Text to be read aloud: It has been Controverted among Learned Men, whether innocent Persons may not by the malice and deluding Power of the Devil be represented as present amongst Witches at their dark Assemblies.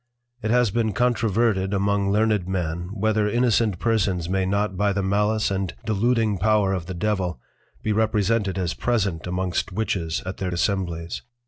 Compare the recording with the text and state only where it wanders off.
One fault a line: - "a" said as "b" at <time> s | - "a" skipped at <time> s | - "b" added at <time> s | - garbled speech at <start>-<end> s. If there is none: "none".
- "dark" skipped at 10.5 s